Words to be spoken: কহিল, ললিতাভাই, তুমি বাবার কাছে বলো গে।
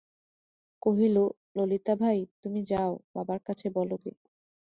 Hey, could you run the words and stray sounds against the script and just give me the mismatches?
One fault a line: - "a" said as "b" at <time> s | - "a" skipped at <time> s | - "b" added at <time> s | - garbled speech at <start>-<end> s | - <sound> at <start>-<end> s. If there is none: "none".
- "যাও" added at 2.6 s